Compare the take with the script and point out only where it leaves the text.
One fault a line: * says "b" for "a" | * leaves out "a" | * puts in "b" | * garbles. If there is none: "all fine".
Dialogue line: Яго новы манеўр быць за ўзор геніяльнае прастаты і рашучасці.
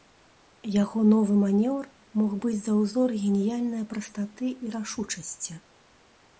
* puts in "мог"